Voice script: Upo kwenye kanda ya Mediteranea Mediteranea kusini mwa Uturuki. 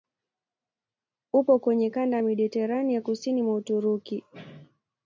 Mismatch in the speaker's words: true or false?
true